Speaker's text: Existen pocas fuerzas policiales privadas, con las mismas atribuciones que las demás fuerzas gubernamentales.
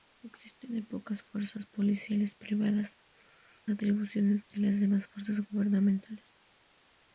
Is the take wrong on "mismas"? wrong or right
wrong